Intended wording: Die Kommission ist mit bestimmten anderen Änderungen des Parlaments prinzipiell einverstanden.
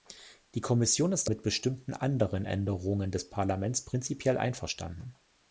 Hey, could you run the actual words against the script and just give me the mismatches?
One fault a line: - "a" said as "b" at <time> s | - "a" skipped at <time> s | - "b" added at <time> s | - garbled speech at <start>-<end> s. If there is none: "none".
none